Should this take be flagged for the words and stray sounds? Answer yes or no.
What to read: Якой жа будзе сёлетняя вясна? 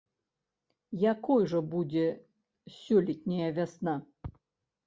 no